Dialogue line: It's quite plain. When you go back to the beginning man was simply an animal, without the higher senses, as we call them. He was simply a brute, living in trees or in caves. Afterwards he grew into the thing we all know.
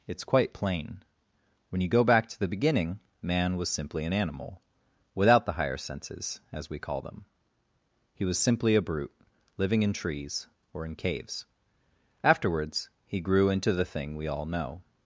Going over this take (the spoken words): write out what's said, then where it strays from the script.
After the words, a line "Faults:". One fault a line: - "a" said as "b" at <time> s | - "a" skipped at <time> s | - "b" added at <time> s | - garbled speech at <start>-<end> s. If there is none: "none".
It's quite plain. When you go back to the beginning man was simply an animal, without the higher senses, as we call them. He was simply a brute, living in trees or in caves. Afterwards he grew into the thing we all know.
Faults:
none